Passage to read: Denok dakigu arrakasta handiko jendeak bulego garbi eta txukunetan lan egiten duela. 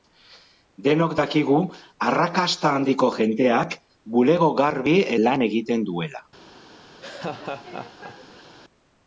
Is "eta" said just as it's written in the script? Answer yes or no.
no